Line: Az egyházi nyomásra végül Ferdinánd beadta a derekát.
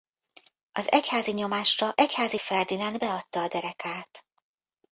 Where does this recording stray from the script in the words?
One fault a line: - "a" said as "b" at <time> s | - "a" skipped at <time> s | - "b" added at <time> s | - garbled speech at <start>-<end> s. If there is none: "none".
- "végül" said as "egyházi" at 2.0 s